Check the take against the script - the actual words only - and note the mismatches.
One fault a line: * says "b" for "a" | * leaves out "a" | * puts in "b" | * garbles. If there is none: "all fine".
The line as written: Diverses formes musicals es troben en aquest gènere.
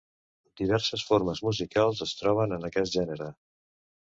all fine